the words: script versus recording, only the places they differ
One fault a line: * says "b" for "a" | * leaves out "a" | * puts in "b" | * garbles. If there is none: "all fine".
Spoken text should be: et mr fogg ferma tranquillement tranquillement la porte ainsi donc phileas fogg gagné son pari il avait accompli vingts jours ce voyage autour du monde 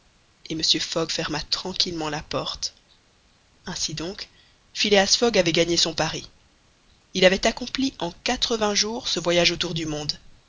* leaves out "tranquillement"
* puts in "avait"
* puts in "en quatre"